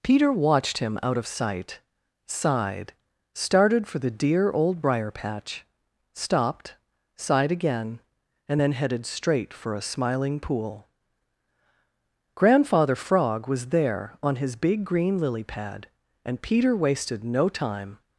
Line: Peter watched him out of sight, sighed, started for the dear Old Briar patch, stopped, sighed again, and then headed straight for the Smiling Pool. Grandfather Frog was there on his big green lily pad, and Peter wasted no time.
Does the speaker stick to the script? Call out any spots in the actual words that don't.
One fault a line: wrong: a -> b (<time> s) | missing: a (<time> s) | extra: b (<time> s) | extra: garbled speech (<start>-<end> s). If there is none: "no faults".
wrong: the -> a (9.7 s)